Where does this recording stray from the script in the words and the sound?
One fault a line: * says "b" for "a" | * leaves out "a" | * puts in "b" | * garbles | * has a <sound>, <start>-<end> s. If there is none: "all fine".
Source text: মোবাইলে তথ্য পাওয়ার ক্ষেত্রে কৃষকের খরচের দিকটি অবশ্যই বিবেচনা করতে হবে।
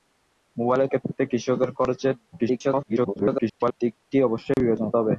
* leaves out "তথ্য পাওয়ার"
* garbles
* has a dropout, 4.5-4.6 s
* leaves out "করতে"